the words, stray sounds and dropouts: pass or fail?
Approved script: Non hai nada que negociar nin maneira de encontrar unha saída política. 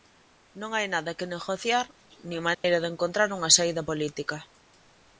fail